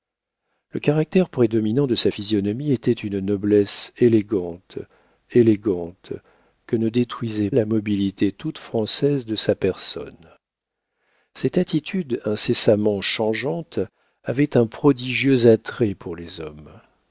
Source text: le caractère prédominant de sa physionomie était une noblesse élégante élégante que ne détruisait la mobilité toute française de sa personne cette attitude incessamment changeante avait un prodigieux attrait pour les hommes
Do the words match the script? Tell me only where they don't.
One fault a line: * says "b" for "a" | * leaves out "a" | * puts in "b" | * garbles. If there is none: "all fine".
all fine